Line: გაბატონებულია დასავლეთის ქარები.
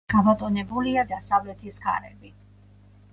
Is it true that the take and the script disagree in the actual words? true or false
false